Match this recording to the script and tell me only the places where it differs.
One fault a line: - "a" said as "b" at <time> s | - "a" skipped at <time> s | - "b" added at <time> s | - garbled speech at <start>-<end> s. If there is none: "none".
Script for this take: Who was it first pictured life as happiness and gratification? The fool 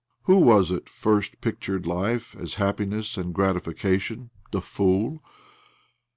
none